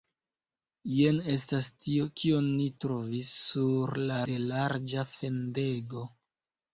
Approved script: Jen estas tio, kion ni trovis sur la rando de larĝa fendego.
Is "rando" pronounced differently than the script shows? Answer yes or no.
yes